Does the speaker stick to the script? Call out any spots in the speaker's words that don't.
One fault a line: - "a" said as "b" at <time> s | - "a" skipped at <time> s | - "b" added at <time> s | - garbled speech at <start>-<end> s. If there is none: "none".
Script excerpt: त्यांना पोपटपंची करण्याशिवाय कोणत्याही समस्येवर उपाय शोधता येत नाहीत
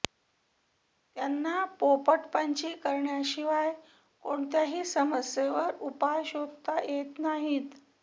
none